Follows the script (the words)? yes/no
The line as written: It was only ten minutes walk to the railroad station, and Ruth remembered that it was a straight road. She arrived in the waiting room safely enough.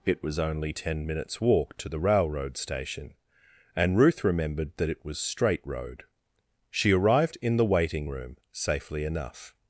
no